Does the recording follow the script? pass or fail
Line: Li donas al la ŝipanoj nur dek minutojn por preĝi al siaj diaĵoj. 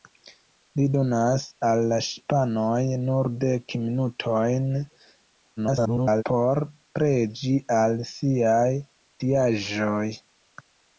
fail